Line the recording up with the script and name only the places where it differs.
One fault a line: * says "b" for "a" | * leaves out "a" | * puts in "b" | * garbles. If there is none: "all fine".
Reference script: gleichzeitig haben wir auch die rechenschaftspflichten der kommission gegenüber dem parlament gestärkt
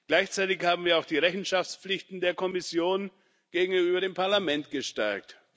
all fine